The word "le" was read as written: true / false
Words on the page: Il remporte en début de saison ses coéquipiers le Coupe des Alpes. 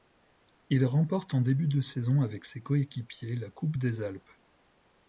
false